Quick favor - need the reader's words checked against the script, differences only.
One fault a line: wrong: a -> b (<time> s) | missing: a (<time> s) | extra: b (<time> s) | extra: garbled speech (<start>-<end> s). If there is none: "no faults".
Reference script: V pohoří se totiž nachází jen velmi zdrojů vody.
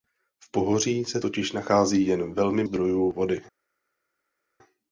no faults